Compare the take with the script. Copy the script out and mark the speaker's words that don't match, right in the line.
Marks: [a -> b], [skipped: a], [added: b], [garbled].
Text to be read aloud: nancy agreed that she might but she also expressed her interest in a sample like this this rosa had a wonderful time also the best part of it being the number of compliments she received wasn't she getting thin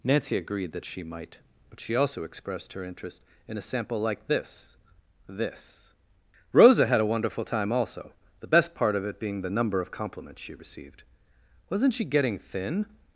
nancy agreed that she might but she also expressed her interest in a sample like this this rosa had a wonderful time also the best part of it being the number of compliments she received wasn't she getting thin